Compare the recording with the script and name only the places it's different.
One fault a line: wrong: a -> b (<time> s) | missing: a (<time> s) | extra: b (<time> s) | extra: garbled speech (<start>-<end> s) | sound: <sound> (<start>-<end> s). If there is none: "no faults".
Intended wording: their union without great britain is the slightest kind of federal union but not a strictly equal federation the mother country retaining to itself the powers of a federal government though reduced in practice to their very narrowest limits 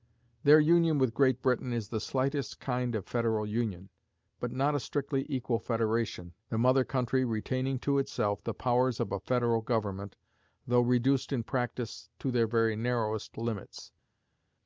wrong: without -> with (1.0 s)